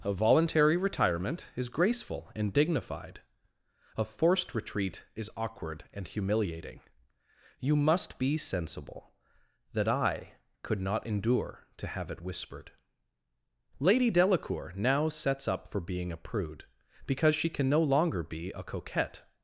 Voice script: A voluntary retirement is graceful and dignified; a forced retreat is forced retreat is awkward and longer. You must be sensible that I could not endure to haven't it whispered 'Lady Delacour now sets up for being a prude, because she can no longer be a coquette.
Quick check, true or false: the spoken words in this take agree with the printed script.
false